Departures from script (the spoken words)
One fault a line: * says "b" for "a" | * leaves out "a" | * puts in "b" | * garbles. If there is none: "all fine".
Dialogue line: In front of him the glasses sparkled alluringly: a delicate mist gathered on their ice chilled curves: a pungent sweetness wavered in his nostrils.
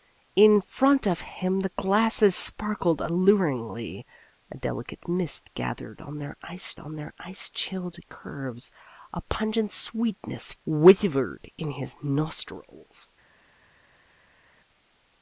* puts in "on their ice"